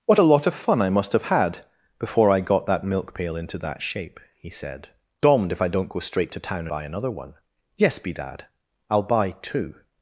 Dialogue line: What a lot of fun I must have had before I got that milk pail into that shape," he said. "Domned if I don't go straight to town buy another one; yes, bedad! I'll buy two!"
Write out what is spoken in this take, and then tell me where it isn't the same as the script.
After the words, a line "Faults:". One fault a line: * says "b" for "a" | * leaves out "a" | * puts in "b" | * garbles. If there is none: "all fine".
What a lot of fun I must have had before I got that milk pail into that shape," he said. "Domned if I don't go straight to town buy another one; yes, bedad! I'll buy two!"
Faults:
all fine